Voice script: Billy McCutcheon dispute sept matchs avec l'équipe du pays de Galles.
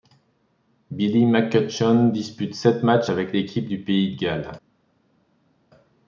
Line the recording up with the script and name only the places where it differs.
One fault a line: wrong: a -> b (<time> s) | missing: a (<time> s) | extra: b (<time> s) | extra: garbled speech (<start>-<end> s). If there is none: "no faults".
no faults